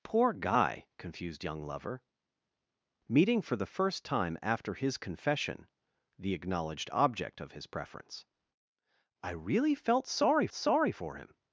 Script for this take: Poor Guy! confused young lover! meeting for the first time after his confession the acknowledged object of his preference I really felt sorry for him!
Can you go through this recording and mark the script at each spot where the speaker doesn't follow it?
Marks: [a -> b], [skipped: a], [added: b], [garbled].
Poor Guy! confused young lover! meeting for the first time after his confession the acknowledged object of his preference I really felt sorry [added: sorry] for him!